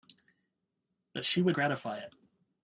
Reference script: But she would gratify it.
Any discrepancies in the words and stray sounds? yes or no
no